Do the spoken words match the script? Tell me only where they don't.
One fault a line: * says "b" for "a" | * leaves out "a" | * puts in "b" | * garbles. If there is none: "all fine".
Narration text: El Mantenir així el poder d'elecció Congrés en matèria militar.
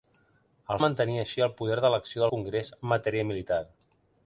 all fine